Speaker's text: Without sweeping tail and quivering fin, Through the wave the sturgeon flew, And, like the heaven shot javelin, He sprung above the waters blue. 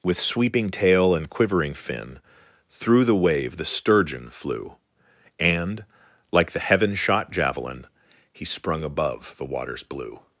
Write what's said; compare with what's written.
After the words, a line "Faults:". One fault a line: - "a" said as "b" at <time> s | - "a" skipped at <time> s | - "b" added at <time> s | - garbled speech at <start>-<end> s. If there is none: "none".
With sweeping tail and quivering fin, Through the wave the sturgeon flew, And, like the heaven shot javelin, He sprung above the waters blue.
Faults:
- "Without" said as "With" at 0.0 s